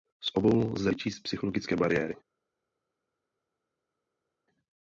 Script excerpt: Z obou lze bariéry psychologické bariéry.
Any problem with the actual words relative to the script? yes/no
yes